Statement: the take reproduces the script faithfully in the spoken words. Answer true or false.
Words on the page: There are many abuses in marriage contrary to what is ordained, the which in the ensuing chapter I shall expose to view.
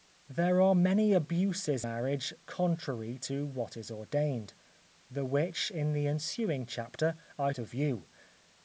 false